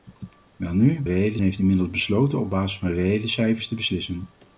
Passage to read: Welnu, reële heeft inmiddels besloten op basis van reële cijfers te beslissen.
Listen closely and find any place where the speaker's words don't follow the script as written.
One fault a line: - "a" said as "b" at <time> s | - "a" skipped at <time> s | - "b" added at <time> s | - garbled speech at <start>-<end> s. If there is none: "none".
none